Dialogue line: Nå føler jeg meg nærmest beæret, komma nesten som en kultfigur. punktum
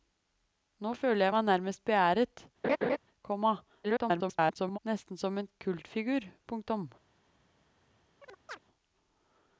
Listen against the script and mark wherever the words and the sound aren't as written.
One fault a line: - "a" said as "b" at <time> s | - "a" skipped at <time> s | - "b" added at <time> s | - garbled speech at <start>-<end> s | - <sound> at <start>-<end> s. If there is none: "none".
- laugh at 2.6-3.0 s
- garbled speech at 3.8-4.8 s
- chirp at 8.2-8.6 s